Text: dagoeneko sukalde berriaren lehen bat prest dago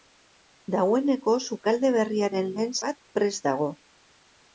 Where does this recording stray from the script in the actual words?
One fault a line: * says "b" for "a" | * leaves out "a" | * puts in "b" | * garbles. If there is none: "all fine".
all fine